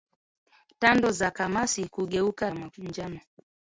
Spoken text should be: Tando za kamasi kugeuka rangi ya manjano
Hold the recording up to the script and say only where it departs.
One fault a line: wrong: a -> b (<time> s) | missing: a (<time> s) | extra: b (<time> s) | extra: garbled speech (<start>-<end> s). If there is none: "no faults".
missing: rangi (2.5 s)